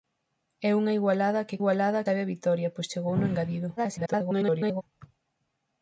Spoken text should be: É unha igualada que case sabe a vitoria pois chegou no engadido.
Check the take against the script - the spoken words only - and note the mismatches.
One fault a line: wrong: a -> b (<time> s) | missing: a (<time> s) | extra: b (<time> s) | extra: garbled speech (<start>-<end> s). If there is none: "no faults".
wrong: case -> igualada (1.6 s)
extra: garbled speech (3.8-4.8 s)